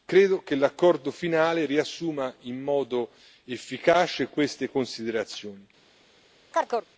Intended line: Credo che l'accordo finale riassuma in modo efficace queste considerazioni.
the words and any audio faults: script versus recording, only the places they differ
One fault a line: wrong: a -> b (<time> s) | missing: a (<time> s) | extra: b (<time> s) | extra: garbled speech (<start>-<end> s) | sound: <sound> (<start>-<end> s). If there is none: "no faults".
sound: chirp (6.5-6.9 s)